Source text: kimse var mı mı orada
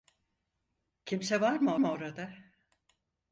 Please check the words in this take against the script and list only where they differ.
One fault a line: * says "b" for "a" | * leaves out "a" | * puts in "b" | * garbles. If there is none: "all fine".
all fine